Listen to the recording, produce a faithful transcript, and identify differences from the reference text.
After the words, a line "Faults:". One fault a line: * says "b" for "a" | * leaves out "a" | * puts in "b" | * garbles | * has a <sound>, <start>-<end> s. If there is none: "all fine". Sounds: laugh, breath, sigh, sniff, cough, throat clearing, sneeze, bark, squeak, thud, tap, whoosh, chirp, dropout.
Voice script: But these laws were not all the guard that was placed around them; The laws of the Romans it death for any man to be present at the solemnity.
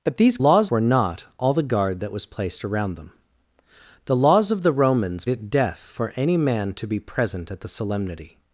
But these laws were not all the guard that was placed around them; The laws of the Romans it death for any man to be present at the solemnity.
Faults:
all fine